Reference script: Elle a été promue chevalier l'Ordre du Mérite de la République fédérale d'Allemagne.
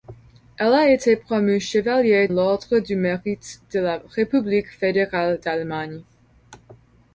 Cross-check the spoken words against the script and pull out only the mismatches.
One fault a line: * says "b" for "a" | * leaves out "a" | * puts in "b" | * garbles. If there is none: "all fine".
all fine